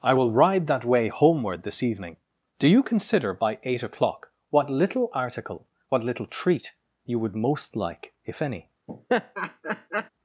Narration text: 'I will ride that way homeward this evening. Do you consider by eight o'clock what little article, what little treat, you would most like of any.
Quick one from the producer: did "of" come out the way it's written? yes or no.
no